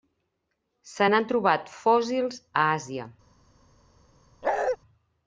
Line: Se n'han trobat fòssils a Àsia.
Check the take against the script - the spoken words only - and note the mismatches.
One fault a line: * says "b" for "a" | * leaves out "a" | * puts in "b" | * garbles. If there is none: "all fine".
all fine